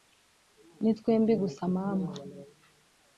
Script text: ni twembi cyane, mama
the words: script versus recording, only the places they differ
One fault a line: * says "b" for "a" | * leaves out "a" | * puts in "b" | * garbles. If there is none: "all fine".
* says "gusa" for "cyane"